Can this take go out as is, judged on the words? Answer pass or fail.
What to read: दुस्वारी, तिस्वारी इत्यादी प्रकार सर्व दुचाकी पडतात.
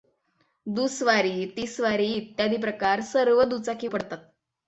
pass